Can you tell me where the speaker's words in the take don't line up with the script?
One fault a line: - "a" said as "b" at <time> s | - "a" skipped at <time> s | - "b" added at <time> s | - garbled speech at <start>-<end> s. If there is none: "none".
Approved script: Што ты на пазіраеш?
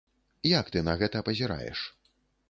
- "Што" said as "Як" at 0.5 s
- "гэта" added at 1.0 s